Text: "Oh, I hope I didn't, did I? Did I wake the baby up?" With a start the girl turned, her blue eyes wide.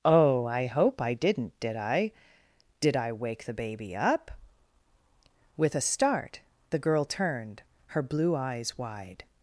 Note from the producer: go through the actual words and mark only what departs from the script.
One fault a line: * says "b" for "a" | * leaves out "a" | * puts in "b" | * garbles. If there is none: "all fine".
all fine